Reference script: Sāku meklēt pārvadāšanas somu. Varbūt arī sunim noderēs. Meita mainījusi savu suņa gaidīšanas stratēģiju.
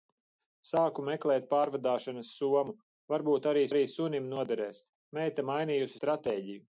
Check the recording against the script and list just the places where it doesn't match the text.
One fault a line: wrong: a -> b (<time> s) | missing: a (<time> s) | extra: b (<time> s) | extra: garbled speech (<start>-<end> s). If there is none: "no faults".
extra: arī (3.7 s)
missing: savu suņa gaidīšanas (6.0 s)